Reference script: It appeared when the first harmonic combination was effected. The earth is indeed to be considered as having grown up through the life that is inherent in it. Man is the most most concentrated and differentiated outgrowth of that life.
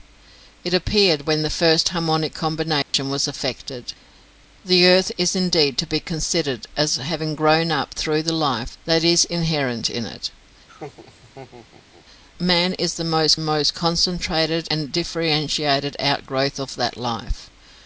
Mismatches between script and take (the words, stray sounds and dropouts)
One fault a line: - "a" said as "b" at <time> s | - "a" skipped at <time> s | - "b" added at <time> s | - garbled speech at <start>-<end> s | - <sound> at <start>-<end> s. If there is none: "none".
- dropout at 2.8-2.9 s
- laugh at 10.7-12.1 s